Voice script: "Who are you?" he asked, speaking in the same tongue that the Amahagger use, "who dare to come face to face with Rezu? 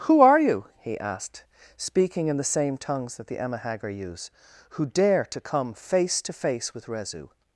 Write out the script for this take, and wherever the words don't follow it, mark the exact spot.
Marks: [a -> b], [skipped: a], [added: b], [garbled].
"Who are you?" he asked, speaking in the same [tongue -> tongues] that the Amahagger use, "who dare to come face to face with Rezu?